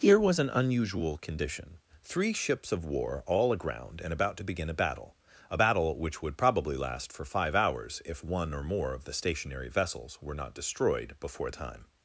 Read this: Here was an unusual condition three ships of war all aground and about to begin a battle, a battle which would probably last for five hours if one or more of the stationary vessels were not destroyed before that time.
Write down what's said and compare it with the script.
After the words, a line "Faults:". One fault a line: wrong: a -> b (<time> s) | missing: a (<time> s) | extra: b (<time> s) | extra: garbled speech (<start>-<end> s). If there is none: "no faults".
Here was an unusual condition three ships of war all aground and about to begin a battle, a battle which would probably last for five hours if one or more of the stationary vessels were not destroyed before time.
Faults:
missing: that (11.5 s)